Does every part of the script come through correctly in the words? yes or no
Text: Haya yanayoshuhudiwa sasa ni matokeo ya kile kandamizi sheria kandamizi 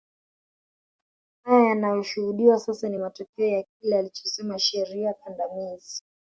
no